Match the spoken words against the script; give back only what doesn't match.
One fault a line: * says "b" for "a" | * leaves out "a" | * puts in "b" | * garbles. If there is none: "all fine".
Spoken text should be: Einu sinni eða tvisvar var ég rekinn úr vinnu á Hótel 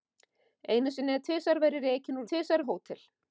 * says "tvisvar" for "vinnu"